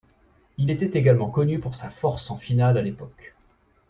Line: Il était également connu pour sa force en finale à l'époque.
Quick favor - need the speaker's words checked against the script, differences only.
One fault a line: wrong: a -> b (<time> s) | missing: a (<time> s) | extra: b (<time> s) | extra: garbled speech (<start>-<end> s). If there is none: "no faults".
no faults